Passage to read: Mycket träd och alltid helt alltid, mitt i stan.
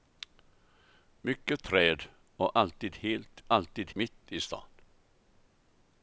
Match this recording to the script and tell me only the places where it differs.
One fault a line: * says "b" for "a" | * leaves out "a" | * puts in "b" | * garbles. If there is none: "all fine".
all fine